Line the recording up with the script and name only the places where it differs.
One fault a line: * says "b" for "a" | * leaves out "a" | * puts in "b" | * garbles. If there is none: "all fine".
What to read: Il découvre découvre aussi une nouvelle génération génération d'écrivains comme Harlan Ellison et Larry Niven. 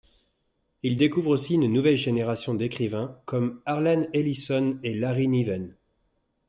* leaves out "découvre"
* leaves out "génération"